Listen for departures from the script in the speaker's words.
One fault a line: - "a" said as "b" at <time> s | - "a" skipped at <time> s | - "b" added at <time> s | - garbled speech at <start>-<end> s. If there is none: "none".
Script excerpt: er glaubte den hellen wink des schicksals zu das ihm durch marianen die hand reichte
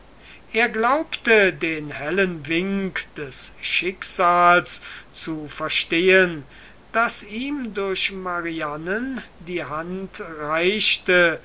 - "verstehen" added at 5.5 s